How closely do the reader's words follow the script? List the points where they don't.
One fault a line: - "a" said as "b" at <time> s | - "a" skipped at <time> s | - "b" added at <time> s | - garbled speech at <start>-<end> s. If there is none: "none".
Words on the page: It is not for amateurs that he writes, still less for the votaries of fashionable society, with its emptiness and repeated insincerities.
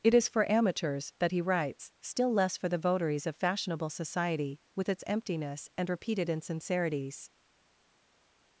- "not" skipped at 0.3 s